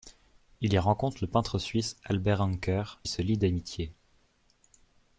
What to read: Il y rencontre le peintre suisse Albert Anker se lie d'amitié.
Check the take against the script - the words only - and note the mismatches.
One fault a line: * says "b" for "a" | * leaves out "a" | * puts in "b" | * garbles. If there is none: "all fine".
all fine